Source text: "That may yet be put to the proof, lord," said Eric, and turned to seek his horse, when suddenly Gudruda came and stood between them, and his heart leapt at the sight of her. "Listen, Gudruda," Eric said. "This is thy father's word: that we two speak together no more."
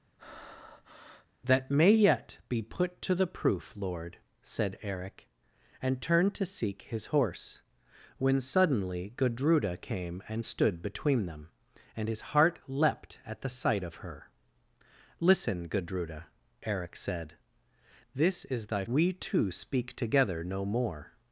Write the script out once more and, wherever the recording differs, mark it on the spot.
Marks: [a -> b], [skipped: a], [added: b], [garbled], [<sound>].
[breath] "That may yet be put to the proof, lord," said Eric, and turned to seek his horse, when suddenly Gudruda came and stood between them, and his heart leapt at the sight of her. "Listen, Gudruda," Eric said. "This is thy [skipped: father's word: that] we two speak together no more."